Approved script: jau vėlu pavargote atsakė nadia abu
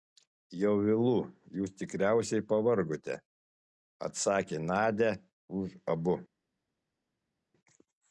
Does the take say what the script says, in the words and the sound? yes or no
no